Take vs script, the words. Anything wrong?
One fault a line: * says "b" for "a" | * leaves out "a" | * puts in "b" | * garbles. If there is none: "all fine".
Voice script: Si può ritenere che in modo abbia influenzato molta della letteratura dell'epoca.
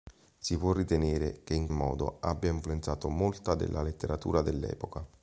all fine